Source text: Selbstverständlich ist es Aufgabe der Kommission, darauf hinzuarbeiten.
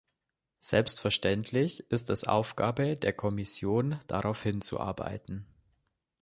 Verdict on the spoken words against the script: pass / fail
pass